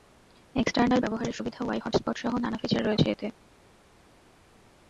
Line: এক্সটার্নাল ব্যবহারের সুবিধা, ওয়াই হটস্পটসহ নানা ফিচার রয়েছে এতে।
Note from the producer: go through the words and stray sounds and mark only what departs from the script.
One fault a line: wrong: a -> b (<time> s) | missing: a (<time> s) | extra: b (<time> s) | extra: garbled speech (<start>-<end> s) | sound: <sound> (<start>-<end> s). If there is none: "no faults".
no faults